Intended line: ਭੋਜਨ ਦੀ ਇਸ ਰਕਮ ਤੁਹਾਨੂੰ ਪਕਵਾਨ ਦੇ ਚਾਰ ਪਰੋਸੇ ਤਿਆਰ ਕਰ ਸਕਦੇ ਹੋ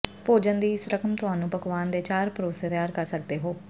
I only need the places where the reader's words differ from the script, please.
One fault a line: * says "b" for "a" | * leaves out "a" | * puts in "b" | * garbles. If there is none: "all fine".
all fine